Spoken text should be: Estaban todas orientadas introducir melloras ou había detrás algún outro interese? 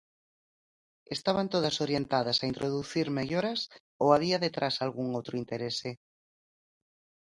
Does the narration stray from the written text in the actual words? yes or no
yes